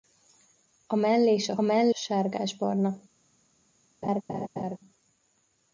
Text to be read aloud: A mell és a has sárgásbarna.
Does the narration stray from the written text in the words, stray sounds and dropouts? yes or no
yes